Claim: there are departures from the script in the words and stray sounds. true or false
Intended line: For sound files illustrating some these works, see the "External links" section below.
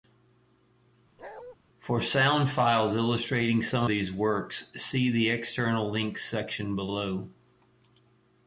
true